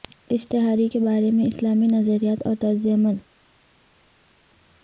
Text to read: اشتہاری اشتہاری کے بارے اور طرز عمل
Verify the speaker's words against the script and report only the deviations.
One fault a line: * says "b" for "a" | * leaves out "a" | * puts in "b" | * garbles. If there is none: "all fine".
* leaves out "اشتہاری"
* puts in "میں اسلامی نظریات"